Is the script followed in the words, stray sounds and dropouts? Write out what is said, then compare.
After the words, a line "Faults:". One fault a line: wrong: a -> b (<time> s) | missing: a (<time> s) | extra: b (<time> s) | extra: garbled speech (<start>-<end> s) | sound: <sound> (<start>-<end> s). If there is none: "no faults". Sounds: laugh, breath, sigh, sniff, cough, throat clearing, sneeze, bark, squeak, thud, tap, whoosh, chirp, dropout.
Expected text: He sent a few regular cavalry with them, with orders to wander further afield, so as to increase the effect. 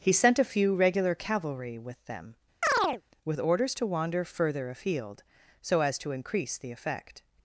He sent a few regular cavalry with them, with orders to wander further afield, so as to increase the effect.
Faults:
sound: chirp (2.6-3.0 s)